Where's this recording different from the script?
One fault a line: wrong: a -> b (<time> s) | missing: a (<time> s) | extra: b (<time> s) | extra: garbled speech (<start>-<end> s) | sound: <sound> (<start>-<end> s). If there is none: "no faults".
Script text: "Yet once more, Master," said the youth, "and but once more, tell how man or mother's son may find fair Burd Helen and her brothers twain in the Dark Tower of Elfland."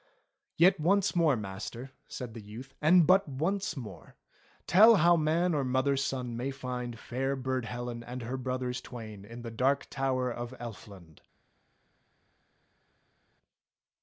no faults